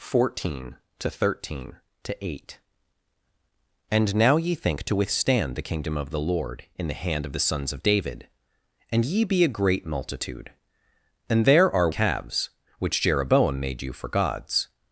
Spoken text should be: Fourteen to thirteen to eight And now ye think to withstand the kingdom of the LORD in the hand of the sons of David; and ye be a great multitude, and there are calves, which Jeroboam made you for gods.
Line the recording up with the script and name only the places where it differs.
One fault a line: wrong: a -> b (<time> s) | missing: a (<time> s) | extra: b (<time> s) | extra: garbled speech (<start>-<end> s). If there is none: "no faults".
no faults